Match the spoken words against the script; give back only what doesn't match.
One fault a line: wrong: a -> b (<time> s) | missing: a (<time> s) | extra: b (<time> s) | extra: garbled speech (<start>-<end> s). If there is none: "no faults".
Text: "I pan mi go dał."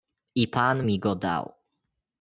no faults